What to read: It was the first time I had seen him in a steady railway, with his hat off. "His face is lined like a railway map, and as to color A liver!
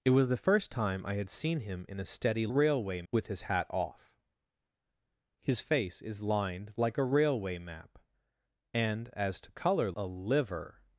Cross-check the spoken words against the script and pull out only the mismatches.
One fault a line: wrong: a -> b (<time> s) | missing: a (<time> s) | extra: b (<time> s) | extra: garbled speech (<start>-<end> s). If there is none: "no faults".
no faults